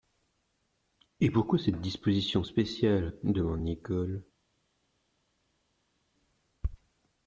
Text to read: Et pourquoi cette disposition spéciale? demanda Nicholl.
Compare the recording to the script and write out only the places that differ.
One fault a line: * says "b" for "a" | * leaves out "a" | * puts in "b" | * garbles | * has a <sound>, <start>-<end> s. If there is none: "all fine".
all fine